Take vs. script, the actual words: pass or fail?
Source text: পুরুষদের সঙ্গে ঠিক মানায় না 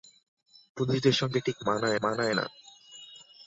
fail